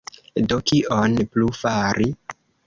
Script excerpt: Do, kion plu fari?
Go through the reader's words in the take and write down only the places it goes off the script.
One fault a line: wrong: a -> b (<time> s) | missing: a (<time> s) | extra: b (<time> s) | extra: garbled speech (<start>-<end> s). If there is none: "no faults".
no faults